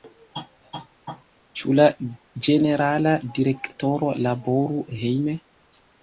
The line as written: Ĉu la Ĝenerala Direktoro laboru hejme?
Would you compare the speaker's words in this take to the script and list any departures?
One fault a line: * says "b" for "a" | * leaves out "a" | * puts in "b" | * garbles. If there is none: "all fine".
all fine